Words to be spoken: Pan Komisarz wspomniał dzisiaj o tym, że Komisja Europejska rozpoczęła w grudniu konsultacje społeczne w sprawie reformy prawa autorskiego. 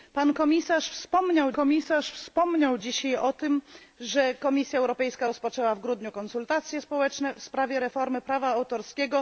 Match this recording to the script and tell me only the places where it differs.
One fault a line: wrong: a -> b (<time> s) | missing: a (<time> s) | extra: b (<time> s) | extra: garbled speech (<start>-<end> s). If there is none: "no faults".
extra: Komisarz wspomniał (1.5 s)